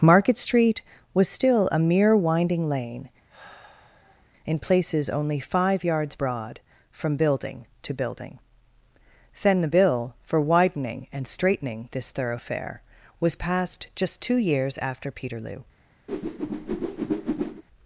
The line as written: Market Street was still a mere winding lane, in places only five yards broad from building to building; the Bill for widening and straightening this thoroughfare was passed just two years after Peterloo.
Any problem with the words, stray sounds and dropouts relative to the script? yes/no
yes